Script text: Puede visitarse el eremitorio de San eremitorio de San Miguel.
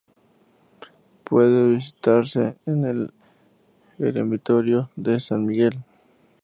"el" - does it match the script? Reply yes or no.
yes